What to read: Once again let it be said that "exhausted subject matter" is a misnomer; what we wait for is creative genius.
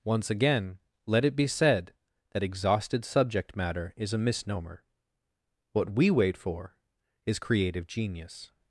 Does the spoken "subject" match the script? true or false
true